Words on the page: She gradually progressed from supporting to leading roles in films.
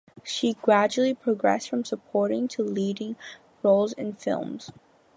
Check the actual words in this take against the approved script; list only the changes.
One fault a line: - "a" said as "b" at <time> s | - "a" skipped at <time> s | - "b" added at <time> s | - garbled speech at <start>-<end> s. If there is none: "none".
none